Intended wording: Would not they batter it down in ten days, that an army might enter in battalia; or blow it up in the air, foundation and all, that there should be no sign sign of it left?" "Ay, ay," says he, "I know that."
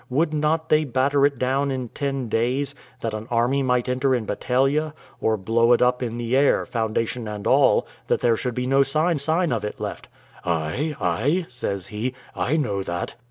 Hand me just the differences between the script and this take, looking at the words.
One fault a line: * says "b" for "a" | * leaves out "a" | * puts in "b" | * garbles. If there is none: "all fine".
all fine